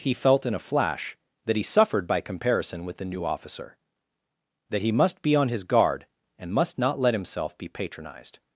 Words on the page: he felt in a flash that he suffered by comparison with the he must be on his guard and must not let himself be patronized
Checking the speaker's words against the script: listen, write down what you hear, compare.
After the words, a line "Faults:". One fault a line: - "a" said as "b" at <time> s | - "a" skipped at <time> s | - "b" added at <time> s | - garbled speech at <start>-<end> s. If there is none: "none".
he felt in a flash that he suffered by comparison with the new officer that he must be on his guard and must not let himself be patronized
Faults:
- "new officer that" added at 3.0 s